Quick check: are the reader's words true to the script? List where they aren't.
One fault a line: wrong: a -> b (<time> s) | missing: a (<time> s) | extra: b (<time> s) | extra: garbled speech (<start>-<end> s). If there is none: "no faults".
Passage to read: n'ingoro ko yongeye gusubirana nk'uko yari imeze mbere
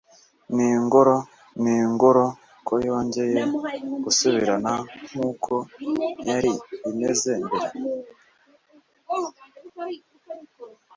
extra: n'ingoro (1.6 s)